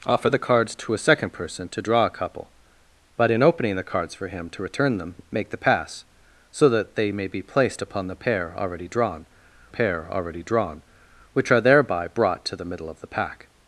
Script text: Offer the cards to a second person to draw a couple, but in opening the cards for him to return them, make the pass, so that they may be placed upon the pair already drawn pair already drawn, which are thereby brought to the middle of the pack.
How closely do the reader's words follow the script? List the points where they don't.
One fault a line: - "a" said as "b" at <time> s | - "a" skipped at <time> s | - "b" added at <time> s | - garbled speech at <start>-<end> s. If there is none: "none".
none